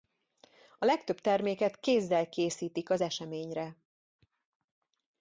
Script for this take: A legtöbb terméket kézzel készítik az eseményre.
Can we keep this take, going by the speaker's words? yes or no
yes